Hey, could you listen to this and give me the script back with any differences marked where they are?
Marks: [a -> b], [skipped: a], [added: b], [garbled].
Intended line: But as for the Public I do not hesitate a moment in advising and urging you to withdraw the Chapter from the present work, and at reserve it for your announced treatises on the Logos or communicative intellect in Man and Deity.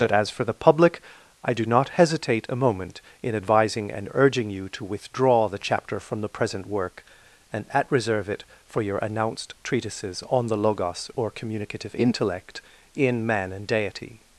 But as for the Public I do not hesitate a moment in advising and urging you to withdraw the Chapter from the present work, and at reserve it for your announced treatises on the Logos or communicative intellect in Man and Deity.